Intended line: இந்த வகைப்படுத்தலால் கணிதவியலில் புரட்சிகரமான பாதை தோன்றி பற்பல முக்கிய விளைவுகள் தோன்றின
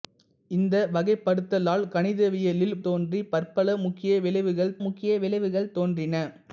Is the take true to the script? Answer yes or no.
no